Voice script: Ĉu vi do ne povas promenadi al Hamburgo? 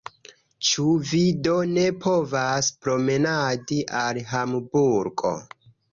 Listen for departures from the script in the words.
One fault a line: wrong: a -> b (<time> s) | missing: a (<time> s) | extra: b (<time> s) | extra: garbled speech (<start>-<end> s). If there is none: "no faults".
no faults